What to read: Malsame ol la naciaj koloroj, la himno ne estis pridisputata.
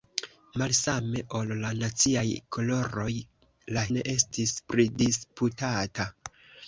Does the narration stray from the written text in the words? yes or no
yes